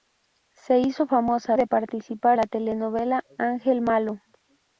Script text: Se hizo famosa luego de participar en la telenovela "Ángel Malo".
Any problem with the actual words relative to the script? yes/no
yes